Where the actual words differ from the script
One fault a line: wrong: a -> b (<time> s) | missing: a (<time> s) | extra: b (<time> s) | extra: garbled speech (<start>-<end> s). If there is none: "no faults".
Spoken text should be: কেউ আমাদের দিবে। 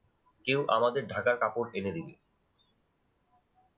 extra: ঢাকার কাপড় এনে (1.1 s)